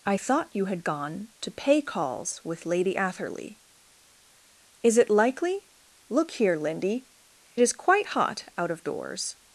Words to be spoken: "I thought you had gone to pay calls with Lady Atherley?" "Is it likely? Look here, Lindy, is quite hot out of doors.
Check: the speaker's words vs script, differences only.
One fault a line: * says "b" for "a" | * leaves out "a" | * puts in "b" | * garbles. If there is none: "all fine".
all fine